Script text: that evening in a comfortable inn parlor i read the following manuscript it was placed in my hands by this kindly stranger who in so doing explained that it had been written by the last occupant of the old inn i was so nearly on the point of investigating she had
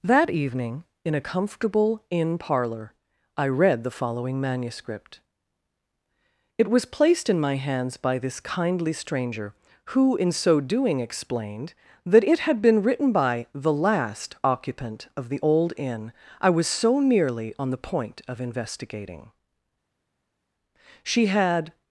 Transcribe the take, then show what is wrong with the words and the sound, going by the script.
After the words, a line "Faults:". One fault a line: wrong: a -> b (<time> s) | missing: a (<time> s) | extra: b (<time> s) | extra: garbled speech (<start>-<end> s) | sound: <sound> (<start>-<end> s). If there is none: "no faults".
that evening in a comfortable inn parlor i read the following manuscript it was placed in my hands by this kindly stranger who in so doing explained that it had been written by the last occupant of the old inn i was so nearly on the point of investigating she had
Faults:
no faults